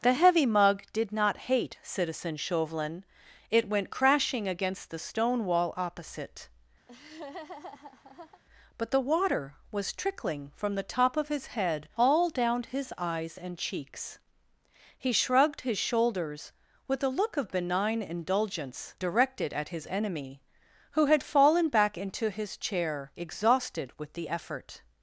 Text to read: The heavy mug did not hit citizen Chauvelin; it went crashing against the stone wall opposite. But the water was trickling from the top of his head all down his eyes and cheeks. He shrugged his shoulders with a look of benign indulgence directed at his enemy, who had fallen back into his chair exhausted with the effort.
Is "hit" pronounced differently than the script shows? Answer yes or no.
yes